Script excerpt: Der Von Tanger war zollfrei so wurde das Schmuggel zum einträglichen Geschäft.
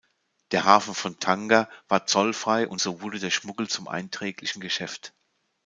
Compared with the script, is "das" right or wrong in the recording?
wrong